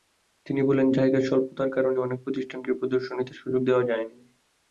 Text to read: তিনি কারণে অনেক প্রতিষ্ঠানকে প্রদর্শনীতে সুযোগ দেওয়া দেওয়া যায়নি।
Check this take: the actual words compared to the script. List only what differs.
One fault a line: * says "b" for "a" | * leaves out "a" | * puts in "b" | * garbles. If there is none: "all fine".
* puts in "বলেন জায়গার স্বল্পতার"
* leaves out "দেওয়া"